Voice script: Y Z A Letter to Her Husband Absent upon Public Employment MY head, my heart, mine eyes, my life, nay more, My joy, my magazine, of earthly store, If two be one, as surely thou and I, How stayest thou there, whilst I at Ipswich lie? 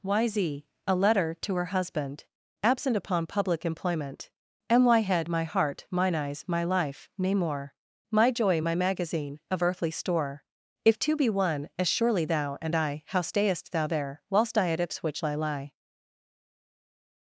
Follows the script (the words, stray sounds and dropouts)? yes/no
no